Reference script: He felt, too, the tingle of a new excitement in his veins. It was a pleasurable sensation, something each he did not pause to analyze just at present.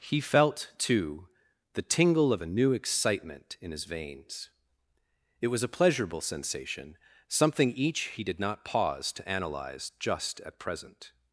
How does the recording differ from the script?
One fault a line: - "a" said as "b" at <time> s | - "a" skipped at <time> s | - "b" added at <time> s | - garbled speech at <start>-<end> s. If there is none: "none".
none